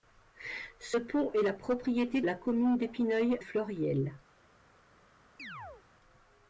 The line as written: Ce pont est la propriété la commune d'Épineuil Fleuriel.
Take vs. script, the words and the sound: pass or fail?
fail